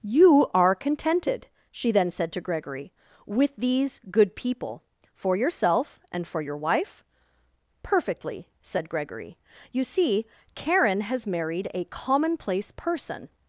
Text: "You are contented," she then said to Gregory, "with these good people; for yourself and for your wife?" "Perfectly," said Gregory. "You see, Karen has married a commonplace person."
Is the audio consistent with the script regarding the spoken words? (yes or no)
yes